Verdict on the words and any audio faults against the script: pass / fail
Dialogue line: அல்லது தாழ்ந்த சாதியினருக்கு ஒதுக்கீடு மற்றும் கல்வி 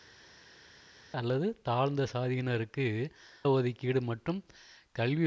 pass